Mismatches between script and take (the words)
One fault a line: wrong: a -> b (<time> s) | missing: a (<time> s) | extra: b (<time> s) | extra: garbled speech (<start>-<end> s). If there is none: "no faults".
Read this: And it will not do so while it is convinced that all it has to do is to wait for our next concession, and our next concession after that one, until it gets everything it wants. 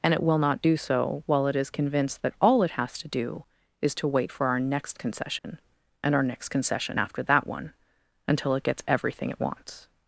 no faults